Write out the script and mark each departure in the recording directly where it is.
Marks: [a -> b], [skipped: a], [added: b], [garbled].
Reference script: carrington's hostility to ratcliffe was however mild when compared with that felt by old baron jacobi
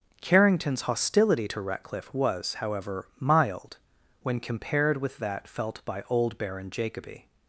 carrington's hostility to ratcliffe was however mild when compared with that felt by old baron jacobi